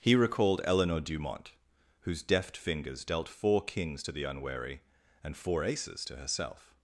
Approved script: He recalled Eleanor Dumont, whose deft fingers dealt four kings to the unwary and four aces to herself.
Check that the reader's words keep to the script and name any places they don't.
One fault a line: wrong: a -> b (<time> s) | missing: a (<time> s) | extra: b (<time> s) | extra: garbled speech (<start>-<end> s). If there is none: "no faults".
no faults